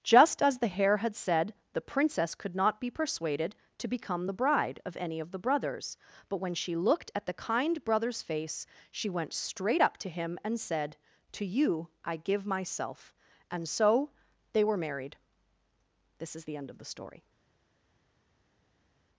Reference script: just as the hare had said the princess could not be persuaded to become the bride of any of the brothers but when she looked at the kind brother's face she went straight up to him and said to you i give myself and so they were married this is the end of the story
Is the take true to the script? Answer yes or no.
yes